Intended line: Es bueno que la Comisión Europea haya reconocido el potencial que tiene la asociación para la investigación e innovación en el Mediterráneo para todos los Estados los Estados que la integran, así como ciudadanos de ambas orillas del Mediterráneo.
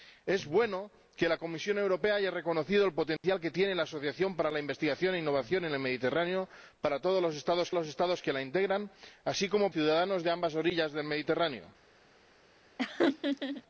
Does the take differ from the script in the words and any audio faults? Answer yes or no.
yes